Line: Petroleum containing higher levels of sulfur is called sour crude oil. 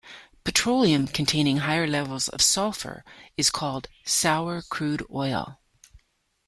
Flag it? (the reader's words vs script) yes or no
no